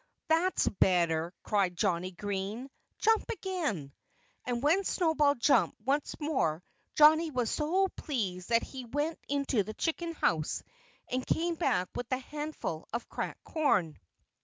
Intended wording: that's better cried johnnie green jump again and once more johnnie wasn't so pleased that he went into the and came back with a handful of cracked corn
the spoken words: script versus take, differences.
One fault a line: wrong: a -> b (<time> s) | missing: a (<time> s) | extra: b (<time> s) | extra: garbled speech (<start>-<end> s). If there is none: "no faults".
extra: when snowball jumped (4.6 s)
wrong: wasn't -> was (7.3 s)
extra: chicken house (9.7 s)